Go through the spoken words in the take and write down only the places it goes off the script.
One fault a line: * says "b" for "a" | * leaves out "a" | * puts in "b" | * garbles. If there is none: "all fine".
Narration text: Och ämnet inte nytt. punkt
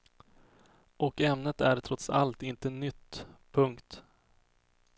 * puts in "är trots allt"